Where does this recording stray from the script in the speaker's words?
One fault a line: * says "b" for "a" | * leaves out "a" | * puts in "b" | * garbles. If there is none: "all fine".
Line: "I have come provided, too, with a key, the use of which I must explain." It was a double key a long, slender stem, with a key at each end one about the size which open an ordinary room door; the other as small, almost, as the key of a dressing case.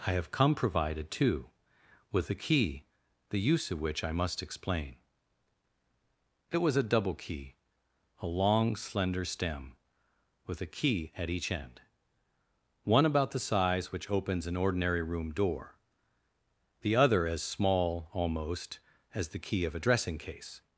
* says "opens" for "open"